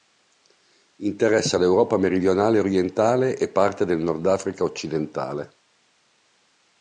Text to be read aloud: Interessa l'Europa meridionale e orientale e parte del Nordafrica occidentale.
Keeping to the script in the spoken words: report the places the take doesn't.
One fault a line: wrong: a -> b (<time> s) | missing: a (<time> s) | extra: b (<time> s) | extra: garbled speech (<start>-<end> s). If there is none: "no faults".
no faults